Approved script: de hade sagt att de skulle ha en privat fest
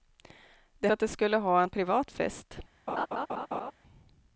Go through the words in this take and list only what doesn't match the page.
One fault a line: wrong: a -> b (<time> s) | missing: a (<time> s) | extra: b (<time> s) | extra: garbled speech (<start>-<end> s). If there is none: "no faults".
missing: hade sagt (0.9 s)